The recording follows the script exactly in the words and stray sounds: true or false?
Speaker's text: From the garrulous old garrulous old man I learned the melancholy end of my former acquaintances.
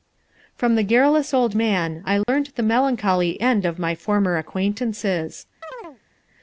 false